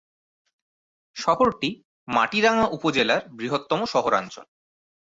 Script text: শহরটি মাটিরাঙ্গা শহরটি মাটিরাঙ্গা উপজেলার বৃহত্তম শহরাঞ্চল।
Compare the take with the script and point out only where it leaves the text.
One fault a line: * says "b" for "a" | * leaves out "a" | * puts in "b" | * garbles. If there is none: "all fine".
* leaves out "শহরটি মাটিরাঙ্গা"